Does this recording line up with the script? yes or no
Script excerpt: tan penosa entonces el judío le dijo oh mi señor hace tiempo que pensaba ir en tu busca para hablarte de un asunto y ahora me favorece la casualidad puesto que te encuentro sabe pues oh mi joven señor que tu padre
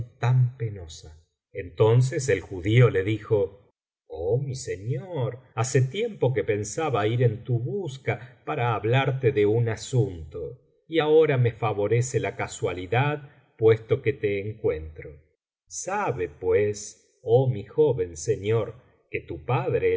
yes